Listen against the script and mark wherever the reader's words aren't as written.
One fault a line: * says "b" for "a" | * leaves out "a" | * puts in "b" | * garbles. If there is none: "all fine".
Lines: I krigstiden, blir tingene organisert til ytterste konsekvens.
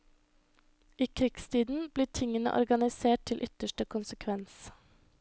all fine